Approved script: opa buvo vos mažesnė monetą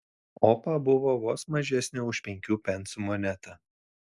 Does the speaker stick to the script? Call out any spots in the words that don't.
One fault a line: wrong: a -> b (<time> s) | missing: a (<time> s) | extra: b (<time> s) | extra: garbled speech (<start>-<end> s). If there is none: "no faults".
extra: už penkių pensų (2.1 s)